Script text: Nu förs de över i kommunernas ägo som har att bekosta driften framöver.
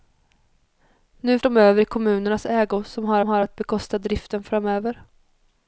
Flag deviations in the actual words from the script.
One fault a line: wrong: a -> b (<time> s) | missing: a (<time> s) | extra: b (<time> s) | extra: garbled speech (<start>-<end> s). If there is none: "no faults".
missing: förs (1.4 s)
extra: har (3.2 s)